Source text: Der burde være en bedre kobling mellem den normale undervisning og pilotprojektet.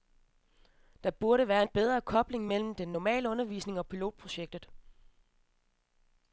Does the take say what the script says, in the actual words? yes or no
yes